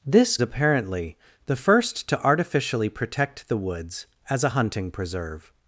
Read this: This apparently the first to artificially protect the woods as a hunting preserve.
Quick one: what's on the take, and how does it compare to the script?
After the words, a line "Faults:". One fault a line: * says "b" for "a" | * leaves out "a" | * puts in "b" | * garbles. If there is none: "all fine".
This apparently the first to artificially protect the woods as a hunting preserve.
Faults:
all fine